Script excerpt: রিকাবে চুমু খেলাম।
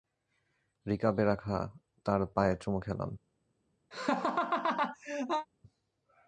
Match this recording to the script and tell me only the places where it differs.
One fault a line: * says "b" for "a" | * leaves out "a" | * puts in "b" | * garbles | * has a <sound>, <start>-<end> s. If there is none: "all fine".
* puts in "রাখা তাঁর পায়ে"
* has a laugh, 3.9-5.5 s